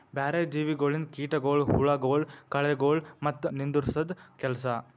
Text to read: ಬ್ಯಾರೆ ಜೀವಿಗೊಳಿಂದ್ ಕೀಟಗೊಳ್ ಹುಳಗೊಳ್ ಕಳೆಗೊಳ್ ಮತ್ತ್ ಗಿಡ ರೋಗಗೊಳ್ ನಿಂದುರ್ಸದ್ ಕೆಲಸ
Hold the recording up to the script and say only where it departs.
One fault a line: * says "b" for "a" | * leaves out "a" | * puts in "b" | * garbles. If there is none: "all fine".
* leaves out "ಗಿಡ ರೋಗಗೊಳ್"